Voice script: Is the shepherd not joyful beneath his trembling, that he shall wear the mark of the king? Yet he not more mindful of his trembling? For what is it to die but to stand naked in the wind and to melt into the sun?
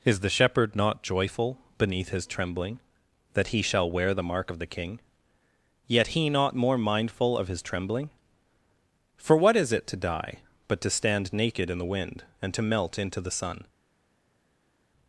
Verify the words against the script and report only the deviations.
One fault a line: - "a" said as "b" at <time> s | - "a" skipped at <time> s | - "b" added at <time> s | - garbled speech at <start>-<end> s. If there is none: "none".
none